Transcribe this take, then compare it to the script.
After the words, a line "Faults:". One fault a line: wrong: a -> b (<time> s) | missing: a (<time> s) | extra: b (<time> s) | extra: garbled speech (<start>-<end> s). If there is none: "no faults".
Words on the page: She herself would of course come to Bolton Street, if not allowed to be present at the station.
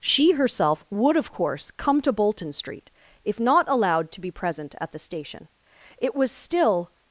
She herself would of course come to Bolton Street, if not allowed to be present at the station. It was still
Faults:
extra: It was still (6.0 s)